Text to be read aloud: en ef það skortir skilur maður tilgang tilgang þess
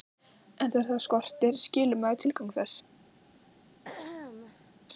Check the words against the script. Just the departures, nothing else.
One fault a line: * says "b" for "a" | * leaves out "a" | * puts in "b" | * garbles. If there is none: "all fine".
* says "þegar" for "ef"
* leaves out "tilgang"